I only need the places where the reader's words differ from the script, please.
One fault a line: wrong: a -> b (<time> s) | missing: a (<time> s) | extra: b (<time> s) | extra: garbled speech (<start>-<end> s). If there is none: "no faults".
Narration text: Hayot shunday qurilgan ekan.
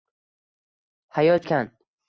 missing: shunday qurilgan (1.4 s)